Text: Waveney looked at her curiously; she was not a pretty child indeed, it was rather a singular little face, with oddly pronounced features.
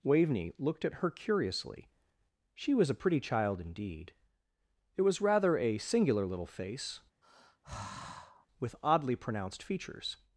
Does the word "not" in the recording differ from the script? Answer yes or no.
yes